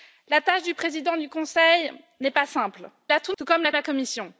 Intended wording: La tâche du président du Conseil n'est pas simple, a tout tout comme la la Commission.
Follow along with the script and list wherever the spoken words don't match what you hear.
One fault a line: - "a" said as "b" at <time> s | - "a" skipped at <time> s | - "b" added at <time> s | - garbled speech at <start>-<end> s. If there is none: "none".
none